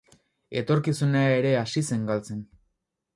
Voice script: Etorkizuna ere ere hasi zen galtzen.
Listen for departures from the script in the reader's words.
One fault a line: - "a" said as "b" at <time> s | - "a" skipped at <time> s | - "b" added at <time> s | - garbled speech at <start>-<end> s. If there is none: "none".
- "ere" skipped at 1.5 s